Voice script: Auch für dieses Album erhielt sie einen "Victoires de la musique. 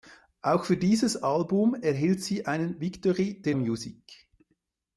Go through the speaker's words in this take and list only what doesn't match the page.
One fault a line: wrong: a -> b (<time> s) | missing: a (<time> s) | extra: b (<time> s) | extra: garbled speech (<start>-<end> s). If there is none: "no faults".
missing: la (3.5 s)